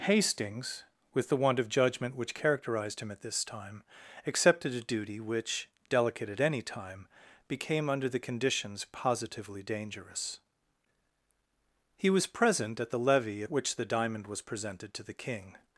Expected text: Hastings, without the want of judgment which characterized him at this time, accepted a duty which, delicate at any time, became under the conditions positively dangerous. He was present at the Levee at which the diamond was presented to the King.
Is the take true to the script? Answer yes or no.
no